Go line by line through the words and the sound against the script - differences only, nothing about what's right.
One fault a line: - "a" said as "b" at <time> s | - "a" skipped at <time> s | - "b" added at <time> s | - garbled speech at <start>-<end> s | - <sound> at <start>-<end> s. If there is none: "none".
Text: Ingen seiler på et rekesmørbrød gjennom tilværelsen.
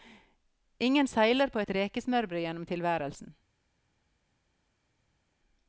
none